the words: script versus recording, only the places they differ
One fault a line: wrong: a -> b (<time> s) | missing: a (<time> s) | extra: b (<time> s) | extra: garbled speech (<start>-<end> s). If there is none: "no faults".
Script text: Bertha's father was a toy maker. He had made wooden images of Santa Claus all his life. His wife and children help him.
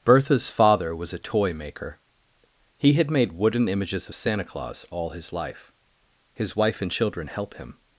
no faults